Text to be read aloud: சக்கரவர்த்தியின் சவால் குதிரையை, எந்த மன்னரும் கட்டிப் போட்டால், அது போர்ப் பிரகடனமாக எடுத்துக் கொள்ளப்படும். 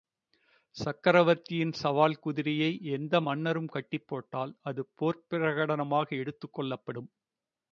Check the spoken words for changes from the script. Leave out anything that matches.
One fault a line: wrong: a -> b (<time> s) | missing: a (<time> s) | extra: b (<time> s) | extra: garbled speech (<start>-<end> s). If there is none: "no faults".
no faults